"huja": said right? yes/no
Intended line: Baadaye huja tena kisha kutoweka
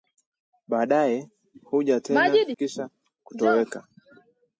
yes